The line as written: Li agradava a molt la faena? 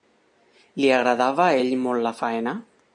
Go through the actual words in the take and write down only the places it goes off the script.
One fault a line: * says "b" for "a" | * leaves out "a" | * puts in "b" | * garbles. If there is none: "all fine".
* puts in "ell"